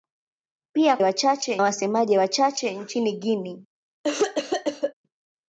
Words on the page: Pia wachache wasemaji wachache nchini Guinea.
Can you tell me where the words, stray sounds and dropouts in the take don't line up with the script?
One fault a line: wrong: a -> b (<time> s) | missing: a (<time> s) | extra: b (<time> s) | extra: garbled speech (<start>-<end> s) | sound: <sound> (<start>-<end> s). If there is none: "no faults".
sound: cough (4.0-4.9 s)